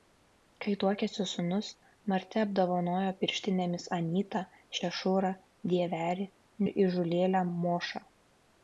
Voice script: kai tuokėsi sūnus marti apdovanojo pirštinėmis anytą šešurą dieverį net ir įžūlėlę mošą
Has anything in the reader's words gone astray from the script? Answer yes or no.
yes